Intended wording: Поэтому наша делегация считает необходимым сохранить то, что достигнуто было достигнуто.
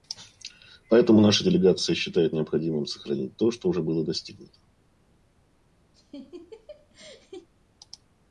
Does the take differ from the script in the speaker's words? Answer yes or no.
yes